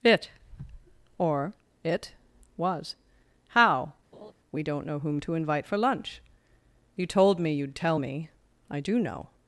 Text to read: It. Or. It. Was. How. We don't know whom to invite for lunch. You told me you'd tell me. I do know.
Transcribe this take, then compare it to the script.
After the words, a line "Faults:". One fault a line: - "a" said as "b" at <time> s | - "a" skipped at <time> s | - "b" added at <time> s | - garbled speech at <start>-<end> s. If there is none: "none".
It. Or. It. Was. How. We don't know whom to invite for lunch. You told me you'd tell me. I do know.
Faults:
none